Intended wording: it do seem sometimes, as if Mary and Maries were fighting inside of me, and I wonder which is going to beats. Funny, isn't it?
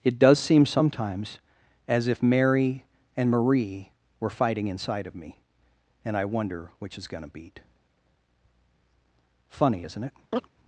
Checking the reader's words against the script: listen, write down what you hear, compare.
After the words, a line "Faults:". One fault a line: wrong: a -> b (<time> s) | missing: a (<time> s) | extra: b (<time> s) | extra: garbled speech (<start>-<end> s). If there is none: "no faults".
it does seem sometimes, as if Mary and Marie were fighting inside of me, and I wonder which is going to beat. Funny, isn't it?
Faults:
wrong: do -> does (0.2 s)
wrong: Maries -> Marie (3.3 s)
wrong: beats -> beat (7.3 s)